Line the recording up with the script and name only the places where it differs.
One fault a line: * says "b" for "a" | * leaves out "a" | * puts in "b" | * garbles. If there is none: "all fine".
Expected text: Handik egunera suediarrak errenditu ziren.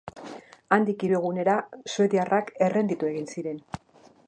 * puts in "hiru"
* puts in "egin"